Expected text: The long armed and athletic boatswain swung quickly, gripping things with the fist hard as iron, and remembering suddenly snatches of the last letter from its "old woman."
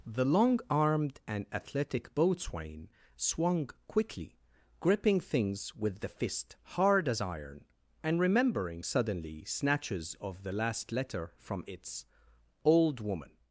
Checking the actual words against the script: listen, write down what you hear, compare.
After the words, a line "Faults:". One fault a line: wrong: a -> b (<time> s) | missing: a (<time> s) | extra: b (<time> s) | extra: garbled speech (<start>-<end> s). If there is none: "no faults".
The long armed and athletic boatswain swung quickly, gripping things with the fist hard as iron, and remembering suddenly snatches of the last letter from its "old woman."
Faults:
no faults